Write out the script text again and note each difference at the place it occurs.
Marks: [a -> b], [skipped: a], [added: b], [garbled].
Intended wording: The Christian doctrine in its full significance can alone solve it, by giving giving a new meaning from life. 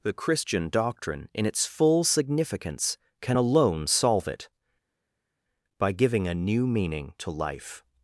The Christian doctrine in its full significance can alone solve it, by giving [skipped: giving] a new meaning [from -> to] life.